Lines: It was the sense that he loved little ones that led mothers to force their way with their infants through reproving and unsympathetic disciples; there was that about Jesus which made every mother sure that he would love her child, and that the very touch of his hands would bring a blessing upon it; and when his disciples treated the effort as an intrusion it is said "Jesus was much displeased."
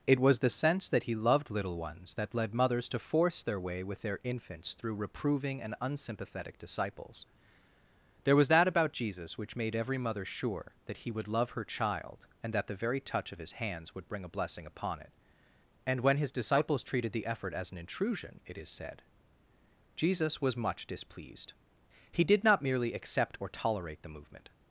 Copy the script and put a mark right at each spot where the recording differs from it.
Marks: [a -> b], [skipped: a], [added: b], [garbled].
It was the sense that he loved little ones that led mothers to force their way with their infants through reproving and unsympathetic disciples; there was that about Jesus which made every mother sure that he would love her child, and that the very touch of his hands would bring a blessing upon it; and when his disciples treated the effort as an intrusion it is said "Jesus was much displeased." [added: He did not merely accept or tolerate the movement]